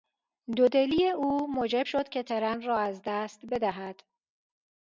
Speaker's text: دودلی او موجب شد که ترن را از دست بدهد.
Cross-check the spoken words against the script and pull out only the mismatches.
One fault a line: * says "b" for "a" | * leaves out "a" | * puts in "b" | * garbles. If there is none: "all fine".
all fine